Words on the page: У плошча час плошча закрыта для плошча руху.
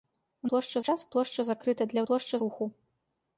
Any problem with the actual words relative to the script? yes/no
no